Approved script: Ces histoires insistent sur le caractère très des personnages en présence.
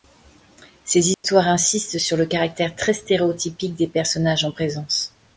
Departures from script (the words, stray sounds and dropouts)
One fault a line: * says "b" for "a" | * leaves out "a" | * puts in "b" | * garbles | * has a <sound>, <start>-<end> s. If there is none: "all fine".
* has a dropout, 1.1-1.2 s
* puts in "stéréotypique"